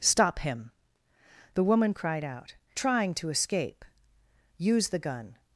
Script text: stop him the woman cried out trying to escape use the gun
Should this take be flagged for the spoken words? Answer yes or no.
no